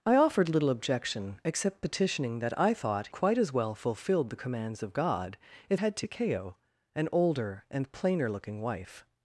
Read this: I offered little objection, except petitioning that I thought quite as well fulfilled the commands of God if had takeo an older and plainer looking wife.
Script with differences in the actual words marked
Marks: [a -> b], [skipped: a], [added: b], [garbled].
I offered little objection, except petitioning that I thought quite as well fulfilled the commands of God if had takeo an older and plainer looking wife.